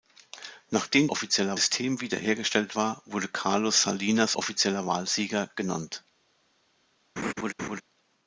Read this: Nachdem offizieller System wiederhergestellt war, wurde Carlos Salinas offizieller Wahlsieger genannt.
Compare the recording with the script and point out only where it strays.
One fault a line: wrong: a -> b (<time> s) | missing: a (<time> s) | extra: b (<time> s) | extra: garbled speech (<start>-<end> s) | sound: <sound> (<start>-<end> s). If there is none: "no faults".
sound: laugh (7.2-7.8 s)